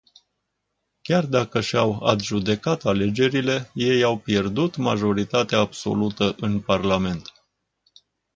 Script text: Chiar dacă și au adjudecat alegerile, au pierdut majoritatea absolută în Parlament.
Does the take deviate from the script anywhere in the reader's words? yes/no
yes